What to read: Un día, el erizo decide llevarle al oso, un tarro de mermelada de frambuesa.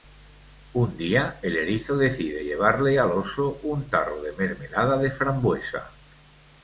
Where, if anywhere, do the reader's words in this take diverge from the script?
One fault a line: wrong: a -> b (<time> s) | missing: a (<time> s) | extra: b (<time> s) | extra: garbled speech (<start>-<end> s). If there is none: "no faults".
no faults